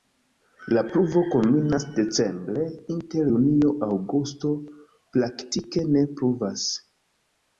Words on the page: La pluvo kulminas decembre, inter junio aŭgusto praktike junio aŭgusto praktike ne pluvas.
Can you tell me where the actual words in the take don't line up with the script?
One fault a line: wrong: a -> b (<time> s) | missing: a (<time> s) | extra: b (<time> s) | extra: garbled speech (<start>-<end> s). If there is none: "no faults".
missing: junio aŭgusto praktike (5.9 s)